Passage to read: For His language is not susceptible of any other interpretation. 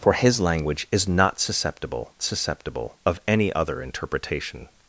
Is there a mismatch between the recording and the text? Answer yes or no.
yes